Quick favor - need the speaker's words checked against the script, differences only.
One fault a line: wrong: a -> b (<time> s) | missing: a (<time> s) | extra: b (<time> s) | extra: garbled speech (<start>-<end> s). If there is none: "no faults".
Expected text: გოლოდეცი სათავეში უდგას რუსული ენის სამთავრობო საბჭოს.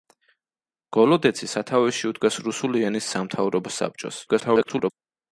extra: garbled speech (4.3-4.9 s)